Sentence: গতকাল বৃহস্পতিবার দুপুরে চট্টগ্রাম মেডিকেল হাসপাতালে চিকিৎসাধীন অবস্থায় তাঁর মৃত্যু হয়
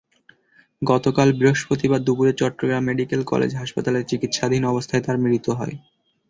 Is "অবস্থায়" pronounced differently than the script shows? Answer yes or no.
no